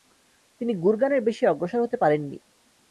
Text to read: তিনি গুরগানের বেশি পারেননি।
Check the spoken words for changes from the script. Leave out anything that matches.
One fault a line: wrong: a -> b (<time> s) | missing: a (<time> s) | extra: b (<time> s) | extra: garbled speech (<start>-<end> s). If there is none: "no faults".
extra: অগ্রসর হতে (1.5 s)